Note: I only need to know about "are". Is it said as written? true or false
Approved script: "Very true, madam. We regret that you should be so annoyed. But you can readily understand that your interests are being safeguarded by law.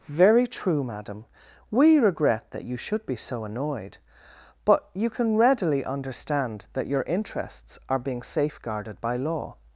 true